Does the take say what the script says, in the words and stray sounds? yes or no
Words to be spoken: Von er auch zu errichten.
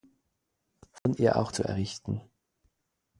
no